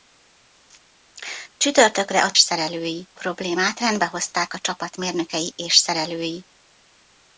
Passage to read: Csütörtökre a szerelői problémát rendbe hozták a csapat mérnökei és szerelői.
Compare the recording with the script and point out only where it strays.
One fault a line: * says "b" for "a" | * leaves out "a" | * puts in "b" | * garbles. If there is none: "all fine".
all fine